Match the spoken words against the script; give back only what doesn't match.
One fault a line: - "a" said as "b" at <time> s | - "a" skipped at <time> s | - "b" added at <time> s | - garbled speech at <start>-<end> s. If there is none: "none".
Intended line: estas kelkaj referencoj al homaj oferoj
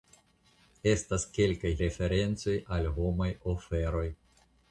none